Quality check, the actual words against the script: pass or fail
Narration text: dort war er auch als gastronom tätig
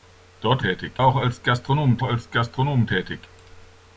fail